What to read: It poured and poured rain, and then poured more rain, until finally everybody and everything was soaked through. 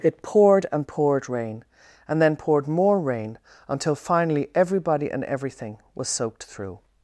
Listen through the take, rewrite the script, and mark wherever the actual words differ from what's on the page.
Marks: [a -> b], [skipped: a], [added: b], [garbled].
It poured and poured rain, and then poured more rain, until finally everybody and everything was soaked through.